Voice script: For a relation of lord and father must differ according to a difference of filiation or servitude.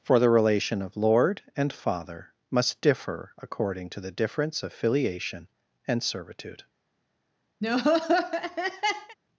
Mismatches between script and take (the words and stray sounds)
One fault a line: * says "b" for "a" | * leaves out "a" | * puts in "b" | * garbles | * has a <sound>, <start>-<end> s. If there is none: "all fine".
* says "the" for "a"
* says "the" for "a"
* says "and" for "or"
* has a laugh, 7.6-9.2 s